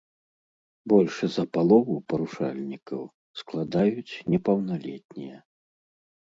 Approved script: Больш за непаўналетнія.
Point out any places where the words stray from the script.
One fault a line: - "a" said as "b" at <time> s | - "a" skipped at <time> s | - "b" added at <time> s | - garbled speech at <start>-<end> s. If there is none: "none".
- "палову парушальнікаў складаюць" added at 1.6 s